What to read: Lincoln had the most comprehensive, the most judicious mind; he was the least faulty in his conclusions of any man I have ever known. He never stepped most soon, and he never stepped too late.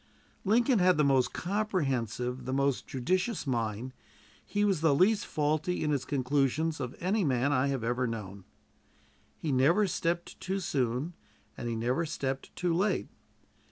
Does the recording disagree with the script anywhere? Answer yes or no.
yes